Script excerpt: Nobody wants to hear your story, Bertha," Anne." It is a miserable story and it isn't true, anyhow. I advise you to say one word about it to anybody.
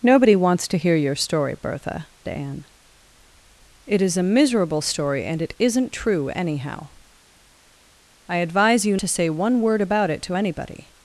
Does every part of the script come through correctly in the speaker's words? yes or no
yes